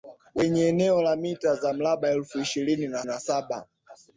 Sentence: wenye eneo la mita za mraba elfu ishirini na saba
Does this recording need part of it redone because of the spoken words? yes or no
yes